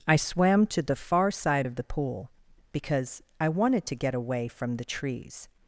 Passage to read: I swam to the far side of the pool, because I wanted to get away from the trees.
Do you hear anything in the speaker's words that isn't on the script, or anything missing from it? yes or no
no